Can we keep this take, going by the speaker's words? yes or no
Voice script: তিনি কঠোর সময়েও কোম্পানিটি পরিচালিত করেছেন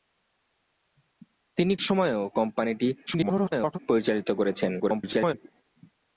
no